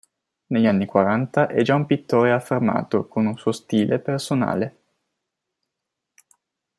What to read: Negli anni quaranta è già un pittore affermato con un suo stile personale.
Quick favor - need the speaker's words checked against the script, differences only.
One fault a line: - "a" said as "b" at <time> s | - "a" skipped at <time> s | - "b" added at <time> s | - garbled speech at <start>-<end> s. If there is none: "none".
none